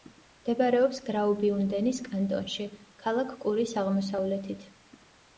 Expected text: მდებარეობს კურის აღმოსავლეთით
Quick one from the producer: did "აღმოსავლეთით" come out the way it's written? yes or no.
yes